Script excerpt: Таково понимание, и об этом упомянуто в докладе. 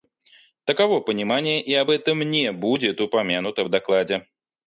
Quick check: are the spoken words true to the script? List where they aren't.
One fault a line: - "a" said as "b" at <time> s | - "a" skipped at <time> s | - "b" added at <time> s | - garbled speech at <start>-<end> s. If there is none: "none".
- "не будет" added at 2.2 s